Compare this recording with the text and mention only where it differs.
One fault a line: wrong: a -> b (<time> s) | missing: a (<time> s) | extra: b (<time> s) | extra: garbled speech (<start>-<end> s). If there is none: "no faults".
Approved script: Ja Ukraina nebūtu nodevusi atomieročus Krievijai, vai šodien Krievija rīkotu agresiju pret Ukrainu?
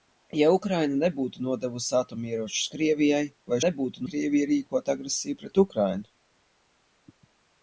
wrong: šodien -> nebūtu (3.6 s)